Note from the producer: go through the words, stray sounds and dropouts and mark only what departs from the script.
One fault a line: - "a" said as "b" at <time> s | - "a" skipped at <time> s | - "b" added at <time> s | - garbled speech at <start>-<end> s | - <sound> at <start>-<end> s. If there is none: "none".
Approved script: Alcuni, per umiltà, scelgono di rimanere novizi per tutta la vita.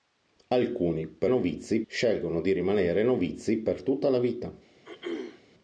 - "umiltà" said as "novizi" at 1.3 s
- throat clearing at 4.8-5.4 s